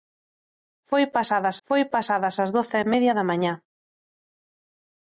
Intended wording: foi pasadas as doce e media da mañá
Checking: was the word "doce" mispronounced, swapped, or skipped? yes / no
no